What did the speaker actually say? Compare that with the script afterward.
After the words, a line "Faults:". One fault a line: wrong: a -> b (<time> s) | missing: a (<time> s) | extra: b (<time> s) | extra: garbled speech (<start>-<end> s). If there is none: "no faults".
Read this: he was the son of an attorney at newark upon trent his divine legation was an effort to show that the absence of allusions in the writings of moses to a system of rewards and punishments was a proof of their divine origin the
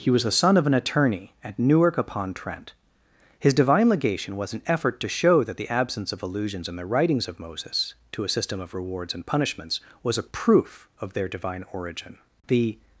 he was the son of an attorney at newark upon trent his divine legation was an effort to show that the absence of allusions in the writings of moses to a system of rewards and punishments was a proof of their divine origin the
Faults:
no faults